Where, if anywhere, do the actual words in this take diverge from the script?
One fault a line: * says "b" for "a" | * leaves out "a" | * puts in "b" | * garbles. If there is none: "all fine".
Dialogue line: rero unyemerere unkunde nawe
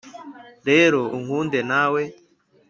* leaves out "unyemerere"